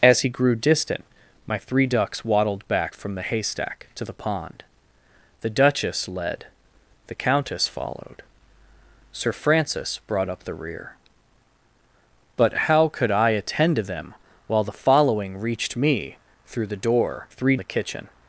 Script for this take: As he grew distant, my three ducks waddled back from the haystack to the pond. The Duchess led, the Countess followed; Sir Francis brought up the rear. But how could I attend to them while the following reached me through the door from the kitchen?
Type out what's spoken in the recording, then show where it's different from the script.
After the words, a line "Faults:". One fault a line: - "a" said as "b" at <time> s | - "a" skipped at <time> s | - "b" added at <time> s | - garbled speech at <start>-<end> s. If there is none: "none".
As he grew distant, my three ducks waddled back from the haystack to the pond. The Duchess led, the Countess followed; Sir Francis brought up the rear. But how could I attend to them while the following reached me through the door three the kitchen?
Faults:
- "from" said as "three" at 17.3 s